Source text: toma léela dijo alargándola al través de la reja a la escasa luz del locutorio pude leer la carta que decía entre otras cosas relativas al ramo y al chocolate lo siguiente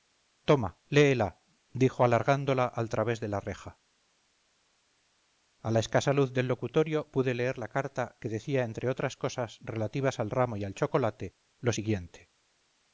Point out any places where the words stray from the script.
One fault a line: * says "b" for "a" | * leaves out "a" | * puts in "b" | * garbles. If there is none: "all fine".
all fine